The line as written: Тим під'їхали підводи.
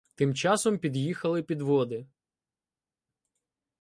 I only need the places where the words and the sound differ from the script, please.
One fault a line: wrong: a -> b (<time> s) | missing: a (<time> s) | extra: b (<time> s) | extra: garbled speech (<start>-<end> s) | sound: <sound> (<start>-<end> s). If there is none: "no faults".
extra: часом (0.3 s)